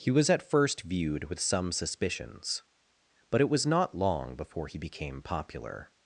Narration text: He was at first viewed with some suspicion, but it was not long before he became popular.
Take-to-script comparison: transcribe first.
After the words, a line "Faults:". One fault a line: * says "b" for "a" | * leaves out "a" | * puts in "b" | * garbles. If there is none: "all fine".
He was at first viewed with some suspicions, but it was not long before he became popular.
Faults:
* says "suspicions" for "suspicion"